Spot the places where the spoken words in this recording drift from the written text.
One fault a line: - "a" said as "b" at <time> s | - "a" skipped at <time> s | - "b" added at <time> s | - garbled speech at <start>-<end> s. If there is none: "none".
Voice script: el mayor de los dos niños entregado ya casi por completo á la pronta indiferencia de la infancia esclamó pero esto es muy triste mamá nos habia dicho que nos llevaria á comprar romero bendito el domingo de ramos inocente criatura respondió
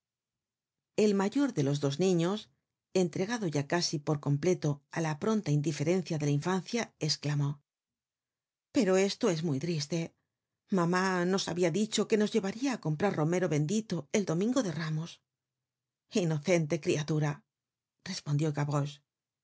none